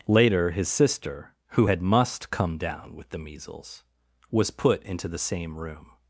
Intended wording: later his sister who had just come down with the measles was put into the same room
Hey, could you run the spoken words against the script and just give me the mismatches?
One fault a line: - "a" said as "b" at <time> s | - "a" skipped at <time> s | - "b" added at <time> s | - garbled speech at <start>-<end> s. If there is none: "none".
- "just" said as "must" at 1.8 s